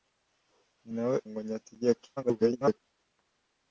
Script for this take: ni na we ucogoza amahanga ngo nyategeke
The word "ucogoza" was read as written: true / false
false